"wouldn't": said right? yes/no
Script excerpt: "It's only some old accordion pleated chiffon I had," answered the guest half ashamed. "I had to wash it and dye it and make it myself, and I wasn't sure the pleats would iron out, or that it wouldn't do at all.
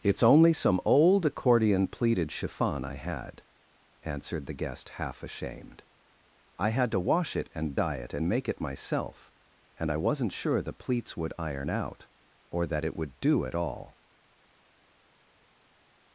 no